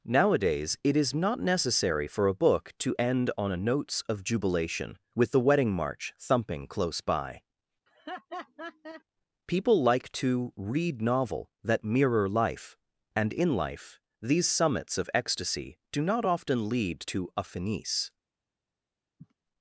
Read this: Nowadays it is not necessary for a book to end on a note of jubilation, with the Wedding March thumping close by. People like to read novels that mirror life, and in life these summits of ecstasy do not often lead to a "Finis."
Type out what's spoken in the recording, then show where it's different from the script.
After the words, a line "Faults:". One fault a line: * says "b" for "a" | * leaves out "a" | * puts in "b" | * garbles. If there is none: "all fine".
Nowadays it is not necessary for a book to end on a notes of jubilation, with the Wedding March thumping close by. People like to read novel that mirror life, and in life these summits of ecstasy do not often lead to a "Finis."
Faults:
* says "notes" for "note"
* says "novel" for "novels"